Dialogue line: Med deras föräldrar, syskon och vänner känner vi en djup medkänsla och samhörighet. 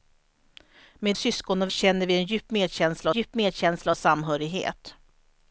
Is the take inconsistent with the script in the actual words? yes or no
yes